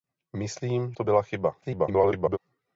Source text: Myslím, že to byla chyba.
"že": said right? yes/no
no